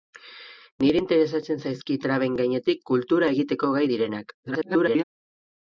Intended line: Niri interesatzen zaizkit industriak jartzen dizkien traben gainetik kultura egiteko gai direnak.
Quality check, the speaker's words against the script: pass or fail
fail